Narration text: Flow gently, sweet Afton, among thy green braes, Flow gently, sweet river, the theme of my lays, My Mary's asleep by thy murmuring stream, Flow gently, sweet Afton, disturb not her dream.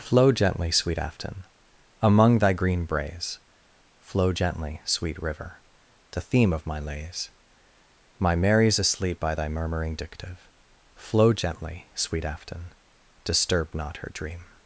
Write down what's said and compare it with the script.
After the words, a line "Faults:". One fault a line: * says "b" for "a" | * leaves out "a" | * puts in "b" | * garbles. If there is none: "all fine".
Flow gently, sweet Afton, among thy green braes, Flow gently, sweet river, the theme of my lays, My Mary's asleep by thy murmuring dictive, Flow gently, sweet Afton, disturb not her dream.
Faults:
* says "dictive" for "stream"